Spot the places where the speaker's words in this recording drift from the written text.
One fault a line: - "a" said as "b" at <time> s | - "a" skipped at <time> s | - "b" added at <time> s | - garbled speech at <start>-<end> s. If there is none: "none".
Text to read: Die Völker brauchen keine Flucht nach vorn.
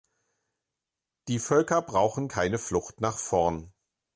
none